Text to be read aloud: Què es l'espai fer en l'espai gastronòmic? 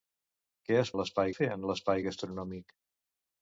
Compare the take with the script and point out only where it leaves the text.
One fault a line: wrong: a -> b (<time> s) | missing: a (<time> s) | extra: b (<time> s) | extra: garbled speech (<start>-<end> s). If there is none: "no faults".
no faults